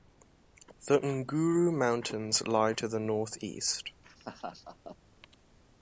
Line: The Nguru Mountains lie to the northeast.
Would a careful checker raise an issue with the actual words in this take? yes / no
no